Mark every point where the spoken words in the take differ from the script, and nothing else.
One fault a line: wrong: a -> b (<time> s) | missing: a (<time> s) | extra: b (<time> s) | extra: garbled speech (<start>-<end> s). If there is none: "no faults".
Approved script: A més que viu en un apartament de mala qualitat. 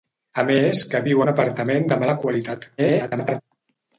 missing: en (1.2 s)
extra: garbled speech (2.8-3.4 s)